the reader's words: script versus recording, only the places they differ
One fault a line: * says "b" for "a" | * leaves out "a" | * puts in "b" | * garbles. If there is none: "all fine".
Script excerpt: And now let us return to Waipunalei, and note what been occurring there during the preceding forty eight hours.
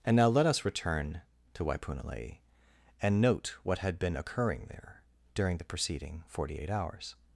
* puts in "had"